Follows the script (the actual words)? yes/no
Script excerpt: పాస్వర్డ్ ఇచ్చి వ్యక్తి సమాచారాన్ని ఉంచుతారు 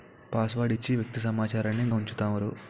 yes